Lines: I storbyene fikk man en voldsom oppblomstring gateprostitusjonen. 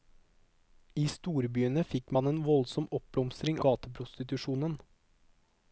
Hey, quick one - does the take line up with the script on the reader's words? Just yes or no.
yes